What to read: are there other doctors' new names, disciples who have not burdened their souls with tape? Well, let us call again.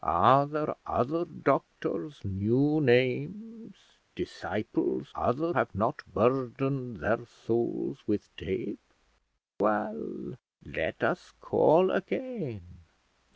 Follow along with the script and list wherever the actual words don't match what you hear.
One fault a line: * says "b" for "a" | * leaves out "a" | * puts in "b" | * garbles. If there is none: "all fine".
* says "other" for "who"